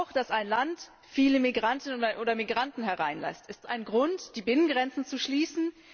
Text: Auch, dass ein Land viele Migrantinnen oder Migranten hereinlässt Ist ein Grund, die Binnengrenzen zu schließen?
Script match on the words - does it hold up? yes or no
yes